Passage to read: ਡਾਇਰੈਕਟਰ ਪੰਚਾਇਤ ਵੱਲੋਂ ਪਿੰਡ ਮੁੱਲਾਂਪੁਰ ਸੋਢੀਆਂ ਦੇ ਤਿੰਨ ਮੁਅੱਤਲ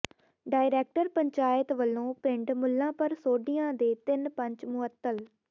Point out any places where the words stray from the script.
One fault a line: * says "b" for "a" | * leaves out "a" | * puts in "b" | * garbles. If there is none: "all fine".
* puts in "ਪੰਚ"